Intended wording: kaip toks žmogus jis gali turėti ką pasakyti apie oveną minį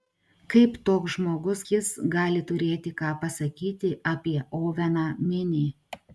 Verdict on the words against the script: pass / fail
pass